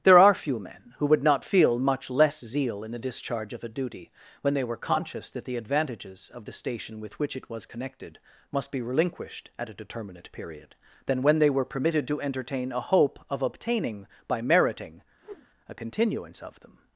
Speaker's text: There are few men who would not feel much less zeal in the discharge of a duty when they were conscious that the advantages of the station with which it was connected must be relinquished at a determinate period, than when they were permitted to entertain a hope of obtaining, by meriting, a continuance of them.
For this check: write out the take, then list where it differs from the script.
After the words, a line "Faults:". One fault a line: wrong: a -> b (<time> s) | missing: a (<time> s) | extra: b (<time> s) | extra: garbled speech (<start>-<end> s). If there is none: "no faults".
There are few men who would not feel much less zeal in the discharge of a duty when they were conscious that the advantages of the station with which it was connected must be relinquished at a determinate period, than when they were permitted to entertain a hope of obtaining, by meriting, a continuance of them.
Faults:
no faults